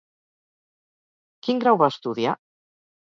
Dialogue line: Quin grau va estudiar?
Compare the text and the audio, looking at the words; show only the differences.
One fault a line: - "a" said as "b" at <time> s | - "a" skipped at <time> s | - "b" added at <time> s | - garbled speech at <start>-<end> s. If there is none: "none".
none